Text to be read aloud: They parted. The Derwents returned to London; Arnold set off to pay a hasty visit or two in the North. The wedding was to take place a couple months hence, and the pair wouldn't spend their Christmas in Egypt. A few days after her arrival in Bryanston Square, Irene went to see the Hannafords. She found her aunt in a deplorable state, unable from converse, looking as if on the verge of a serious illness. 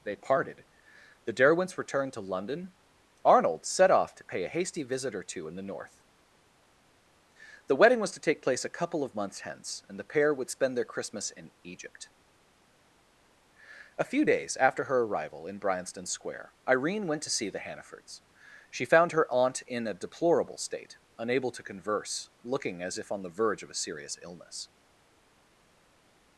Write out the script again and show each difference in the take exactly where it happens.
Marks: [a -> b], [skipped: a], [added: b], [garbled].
They parted. The Derwents returned to London; Arnold set off to pay a hasty visit or two in the North. The wedding was to take place a couple [added: of] months hence, and the pair [wouldn't -> would] spend their Christmas in Egypt. A few days after her arrival in Bryanston Square, Irene went to see the Hannafords. She found her aunt in a deplorable state, unable [from -> to] converse, looking as if on the verge of a serious illness.